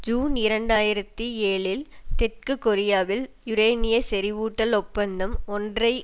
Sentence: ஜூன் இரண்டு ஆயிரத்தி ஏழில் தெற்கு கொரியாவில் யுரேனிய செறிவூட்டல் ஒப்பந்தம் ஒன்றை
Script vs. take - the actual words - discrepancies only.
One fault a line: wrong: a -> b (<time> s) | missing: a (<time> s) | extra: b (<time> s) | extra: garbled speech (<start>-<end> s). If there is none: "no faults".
no faults